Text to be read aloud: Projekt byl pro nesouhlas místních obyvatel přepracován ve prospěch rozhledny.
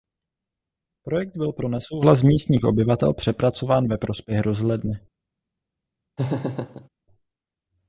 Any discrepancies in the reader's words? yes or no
no